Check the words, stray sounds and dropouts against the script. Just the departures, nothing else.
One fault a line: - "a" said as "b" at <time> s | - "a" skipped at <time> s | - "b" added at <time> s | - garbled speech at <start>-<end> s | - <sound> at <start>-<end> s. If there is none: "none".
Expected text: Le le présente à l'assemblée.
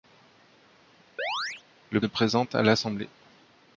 - chirp at 1.2-1.6 s